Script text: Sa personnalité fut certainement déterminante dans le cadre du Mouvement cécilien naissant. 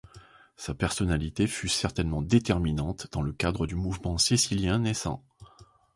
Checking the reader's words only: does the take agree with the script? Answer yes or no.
yes